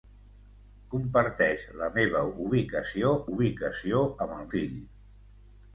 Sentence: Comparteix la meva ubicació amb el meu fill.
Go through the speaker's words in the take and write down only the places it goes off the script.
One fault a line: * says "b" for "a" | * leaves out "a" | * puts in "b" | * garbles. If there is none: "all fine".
* puts in "ubicació"
* leaves out "meu"